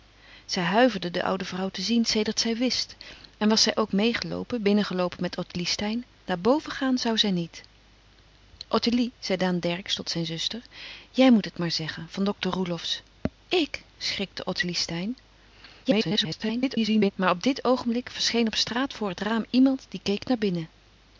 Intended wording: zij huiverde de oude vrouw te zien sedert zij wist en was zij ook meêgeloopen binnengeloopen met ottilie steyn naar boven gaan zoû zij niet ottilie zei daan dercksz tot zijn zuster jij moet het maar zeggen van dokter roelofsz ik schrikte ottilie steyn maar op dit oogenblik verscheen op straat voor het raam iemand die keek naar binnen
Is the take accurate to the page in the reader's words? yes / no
no